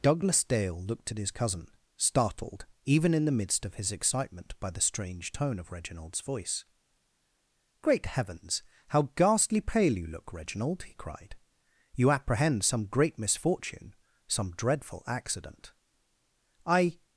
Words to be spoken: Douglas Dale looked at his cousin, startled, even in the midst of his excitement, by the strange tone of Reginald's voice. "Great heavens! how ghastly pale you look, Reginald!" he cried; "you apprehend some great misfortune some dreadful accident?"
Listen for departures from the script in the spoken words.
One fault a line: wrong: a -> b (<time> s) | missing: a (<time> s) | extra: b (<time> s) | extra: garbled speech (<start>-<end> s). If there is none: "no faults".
extra: I (16.6 s)